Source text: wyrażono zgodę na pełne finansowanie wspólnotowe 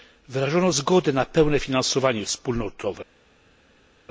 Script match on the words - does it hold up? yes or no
yes